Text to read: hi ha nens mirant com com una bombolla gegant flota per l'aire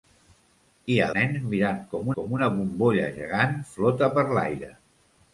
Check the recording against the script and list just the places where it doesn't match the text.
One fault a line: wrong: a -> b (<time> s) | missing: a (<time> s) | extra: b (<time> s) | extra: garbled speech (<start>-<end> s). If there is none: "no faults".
no faults